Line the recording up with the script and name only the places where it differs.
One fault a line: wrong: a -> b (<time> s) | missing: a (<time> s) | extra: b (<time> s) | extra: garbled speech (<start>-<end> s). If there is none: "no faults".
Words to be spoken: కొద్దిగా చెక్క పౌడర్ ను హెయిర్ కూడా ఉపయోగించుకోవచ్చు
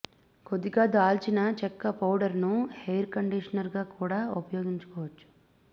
extra: దాల్చిన (0.9 s)
extra: కండీషనర్ గా (3.1 s)